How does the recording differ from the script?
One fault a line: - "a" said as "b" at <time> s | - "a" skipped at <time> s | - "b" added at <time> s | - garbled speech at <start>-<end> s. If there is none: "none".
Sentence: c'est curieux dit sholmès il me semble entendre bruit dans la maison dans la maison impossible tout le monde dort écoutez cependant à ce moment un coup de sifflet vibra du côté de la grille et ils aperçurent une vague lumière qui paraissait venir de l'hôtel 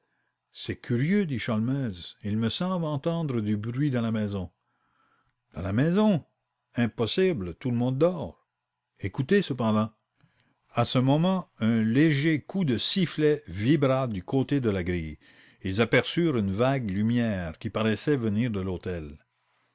- "du" added at 3.4 s
- "léger" added at 11.8 s